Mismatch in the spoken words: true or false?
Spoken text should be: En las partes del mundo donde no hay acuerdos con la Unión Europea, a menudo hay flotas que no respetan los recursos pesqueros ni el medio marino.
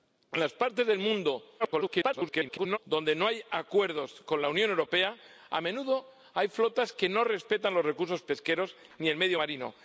true